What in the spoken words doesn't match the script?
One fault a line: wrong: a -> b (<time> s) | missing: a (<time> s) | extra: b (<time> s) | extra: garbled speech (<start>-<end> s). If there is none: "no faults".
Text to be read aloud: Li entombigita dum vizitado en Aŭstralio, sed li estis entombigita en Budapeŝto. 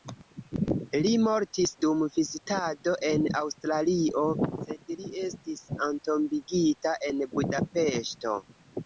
wrong: entombigita -> mortis (1.2 s)